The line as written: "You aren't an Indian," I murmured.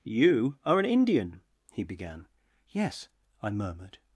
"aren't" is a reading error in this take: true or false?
true